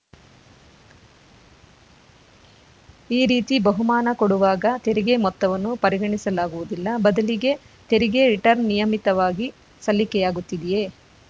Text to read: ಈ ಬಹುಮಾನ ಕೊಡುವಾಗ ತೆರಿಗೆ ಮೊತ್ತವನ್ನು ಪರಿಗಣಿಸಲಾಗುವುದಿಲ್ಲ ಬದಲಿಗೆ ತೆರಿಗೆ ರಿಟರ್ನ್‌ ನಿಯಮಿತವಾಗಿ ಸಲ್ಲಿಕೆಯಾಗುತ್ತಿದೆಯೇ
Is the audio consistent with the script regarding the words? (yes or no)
no